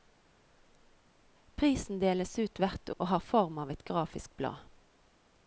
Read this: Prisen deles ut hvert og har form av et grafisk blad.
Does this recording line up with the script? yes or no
yes